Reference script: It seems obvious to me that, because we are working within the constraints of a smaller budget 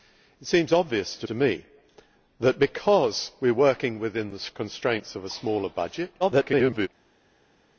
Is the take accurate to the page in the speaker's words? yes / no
no